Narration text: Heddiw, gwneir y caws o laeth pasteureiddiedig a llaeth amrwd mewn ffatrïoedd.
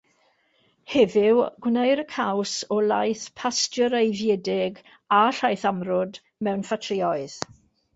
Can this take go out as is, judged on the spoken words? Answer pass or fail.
pass